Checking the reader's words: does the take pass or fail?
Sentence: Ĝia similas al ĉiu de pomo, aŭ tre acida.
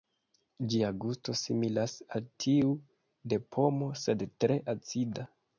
fail